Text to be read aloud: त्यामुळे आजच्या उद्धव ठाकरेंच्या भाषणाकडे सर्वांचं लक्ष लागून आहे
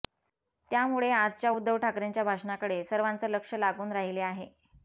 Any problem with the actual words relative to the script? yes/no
yes